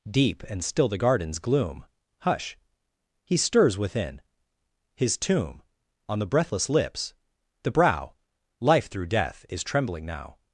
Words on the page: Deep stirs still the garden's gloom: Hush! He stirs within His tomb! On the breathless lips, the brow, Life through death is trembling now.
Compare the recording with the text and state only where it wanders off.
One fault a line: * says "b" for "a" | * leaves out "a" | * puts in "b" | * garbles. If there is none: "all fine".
* says "and" for "stirs"